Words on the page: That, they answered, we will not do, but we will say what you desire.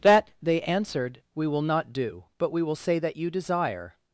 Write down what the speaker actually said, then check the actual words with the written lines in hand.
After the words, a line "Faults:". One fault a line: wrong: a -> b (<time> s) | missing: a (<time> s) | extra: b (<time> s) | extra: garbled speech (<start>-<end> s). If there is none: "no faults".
That, they answered, we will not do, but we will say that you desire.
Faults:
wrong: what -> that (3.0 s)